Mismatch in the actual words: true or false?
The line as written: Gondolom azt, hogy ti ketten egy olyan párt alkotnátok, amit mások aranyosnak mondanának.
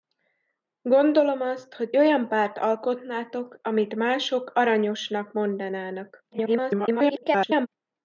true